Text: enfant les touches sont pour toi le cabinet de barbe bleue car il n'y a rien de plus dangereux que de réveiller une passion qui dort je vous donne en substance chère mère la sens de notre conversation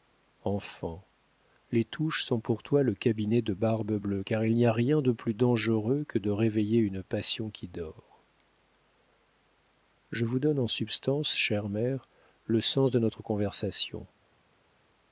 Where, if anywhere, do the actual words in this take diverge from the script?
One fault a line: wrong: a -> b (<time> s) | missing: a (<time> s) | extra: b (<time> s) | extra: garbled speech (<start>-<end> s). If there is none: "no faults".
wrong: la -> le (12.5 s)